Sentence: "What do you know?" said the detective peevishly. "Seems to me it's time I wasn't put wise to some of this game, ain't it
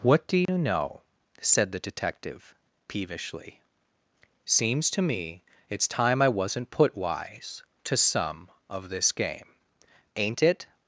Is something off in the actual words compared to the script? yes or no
no